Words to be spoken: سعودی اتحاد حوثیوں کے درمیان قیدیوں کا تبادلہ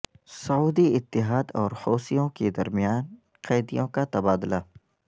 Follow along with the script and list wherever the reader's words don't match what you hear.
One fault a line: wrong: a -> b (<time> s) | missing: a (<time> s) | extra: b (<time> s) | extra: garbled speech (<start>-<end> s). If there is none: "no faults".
extra: اور (1.6 s)